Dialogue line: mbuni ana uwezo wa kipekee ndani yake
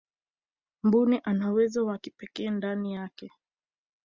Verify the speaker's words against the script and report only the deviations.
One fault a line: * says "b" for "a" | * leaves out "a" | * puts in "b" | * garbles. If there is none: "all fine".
all fine